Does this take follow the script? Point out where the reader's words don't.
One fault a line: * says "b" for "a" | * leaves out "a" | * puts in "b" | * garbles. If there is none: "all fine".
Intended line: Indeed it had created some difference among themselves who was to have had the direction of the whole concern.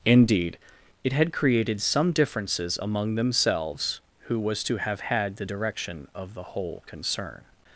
* says "differences" for "difference"